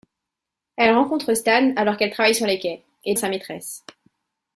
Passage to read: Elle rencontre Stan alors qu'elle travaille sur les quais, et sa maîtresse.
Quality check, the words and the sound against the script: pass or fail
pass